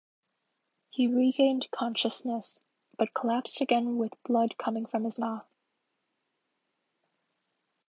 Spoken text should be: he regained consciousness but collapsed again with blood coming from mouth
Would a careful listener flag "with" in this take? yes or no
no